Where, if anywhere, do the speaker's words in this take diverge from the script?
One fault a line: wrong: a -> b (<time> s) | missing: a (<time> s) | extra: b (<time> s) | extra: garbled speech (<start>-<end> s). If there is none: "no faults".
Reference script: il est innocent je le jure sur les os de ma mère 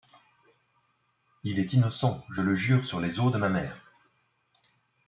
no faults